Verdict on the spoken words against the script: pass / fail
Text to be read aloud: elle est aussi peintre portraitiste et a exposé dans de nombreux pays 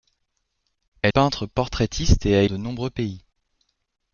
fail